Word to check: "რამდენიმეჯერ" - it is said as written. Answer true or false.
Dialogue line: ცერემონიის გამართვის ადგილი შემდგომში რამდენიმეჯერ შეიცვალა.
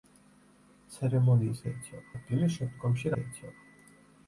false